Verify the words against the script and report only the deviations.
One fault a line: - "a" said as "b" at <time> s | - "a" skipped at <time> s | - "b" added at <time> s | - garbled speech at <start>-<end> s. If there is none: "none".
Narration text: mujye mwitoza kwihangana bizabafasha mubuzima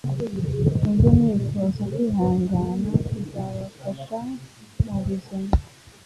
none